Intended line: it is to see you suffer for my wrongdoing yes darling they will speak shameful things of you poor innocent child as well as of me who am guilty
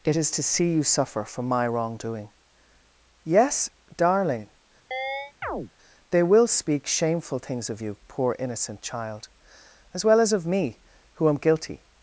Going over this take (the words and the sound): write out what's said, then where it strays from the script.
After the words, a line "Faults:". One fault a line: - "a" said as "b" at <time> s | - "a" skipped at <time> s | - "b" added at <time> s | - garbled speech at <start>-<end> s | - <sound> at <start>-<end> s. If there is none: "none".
it is to see you suffer for my wrongdoing yes darling they will speak shameful things of you poor innocent child as well as of me who am guilty
Faults:
- chirp at 4.9-5.7 s